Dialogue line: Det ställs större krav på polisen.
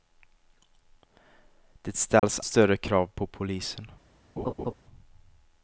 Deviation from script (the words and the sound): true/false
true